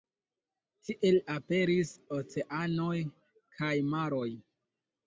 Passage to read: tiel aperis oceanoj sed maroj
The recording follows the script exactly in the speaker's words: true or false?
false